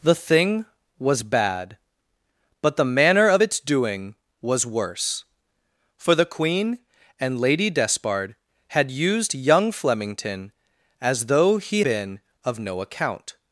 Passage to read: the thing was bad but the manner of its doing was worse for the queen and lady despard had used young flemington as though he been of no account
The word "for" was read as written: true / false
true